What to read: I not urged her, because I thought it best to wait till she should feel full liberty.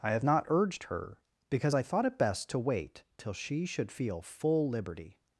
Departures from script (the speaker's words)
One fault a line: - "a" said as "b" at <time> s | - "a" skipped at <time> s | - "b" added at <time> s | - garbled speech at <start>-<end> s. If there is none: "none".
- "have" added at 0.1 s